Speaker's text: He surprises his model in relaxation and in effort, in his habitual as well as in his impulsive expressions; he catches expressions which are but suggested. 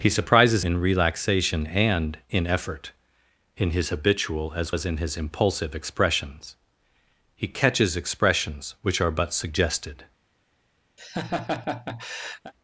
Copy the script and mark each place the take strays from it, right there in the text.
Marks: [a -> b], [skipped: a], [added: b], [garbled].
He surprises [skipped: his model] in relaxation and in effort, in his habitual as [skipped: well] as in his impulsive expressions; he catches expressions which are but suggested.